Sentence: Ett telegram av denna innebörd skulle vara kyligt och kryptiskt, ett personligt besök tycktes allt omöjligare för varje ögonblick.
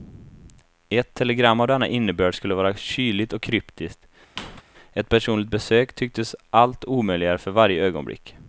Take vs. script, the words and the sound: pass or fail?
fail